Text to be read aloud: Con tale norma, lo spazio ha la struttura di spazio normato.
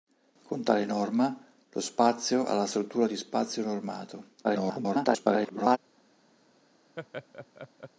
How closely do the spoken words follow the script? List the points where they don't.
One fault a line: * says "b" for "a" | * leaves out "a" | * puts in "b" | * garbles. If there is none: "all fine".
* garbles